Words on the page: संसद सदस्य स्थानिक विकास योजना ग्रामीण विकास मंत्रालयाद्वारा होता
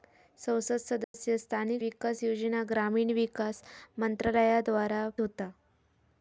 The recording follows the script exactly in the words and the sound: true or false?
false